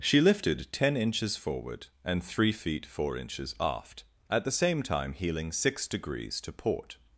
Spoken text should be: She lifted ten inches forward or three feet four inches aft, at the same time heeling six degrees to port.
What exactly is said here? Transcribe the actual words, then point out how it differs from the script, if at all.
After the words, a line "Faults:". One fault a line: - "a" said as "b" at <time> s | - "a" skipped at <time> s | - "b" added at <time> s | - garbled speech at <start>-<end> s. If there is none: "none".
She lifted ten inches forward and three feet four inches aft, at the same time heeling six degrees to port.
Faults:
- "or" said as "and" at 2.0 s